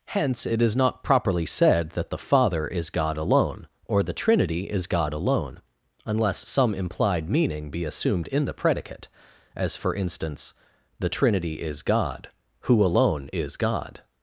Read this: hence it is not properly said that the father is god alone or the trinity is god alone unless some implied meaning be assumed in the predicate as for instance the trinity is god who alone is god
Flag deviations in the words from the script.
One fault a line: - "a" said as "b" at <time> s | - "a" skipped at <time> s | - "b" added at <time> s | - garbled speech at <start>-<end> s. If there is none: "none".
none